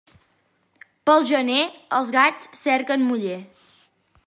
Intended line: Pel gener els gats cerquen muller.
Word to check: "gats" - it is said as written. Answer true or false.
true